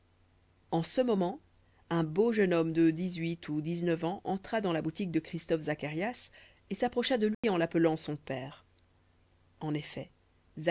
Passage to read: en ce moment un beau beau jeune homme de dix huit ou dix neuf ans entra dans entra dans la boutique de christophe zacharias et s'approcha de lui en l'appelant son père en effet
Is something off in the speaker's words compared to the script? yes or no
yes